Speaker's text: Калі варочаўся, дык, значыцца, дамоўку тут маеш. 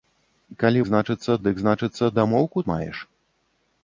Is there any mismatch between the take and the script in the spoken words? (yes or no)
yes